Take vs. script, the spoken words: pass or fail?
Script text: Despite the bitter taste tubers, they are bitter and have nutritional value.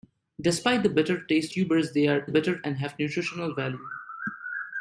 pass